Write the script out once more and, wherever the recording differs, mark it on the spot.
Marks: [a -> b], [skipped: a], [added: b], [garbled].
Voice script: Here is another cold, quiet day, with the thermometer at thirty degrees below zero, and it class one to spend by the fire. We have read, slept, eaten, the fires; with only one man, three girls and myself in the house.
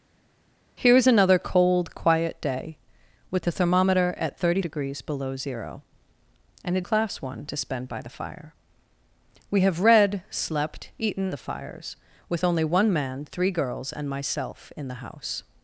Here is another cold, quiet day, with the thermometer at thirty degrees below zero, and it class one to spend by the fire. We have read, slept, eaten, the fires; with only one man, three girls and myself in the house.